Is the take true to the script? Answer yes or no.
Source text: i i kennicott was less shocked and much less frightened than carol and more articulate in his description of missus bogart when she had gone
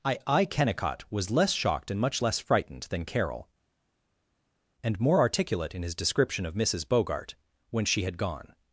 yes